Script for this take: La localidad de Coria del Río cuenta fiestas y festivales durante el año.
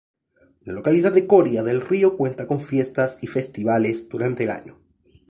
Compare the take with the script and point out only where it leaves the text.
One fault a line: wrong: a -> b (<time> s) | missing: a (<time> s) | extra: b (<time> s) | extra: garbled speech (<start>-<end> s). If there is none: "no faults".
extra: con (2.5 s)